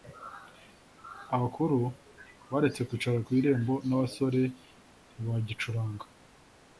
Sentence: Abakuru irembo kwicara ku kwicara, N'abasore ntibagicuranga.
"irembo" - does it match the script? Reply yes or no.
no